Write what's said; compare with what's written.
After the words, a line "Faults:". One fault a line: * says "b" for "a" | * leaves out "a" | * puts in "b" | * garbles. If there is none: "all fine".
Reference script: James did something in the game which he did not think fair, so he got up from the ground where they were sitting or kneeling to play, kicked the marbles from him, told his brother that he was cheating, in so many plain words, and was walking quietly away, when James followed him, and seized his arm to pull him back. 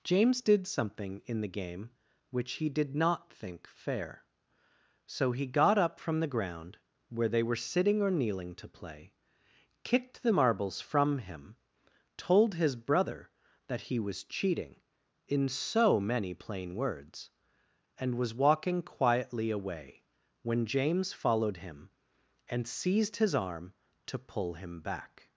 James did something in the game which he did not think fair, so he got up from the ground where they were sitting or kneeling to play, kicked the marbles from him, told his brother that he was cheating, in so many plain words, and was walking quietly away, when James followed him, and seized his arm to pull him back.
Faults:
all fine